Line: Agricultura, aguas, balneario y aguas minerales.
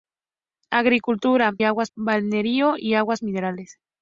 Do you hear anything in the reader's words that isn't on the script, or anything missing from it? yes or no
no